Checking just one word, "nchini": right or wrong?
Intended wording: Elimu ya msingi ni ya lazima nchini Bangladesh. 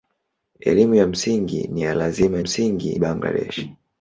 wrong